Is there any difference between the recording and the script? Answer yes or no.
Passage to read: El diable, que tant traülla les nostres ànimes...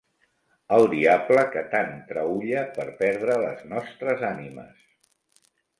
yes